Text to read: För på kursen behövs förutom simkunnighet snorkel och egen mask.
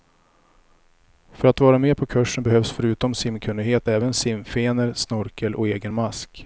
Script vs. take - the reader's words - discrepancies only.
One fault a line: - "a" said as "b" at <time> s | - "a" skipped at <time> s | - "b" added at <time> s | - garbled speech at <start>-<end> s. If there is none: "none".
- "att vara med" added at 1.5 s
- "även simfenor" added at 3.9 s